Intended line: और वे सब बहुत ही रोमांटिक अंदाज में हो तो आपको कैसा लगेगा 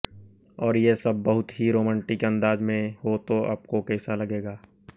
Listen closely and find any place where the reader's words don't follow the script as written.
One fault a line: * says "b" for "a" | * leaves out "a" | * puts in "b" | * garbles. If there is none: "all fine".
* says "ये" for "वे"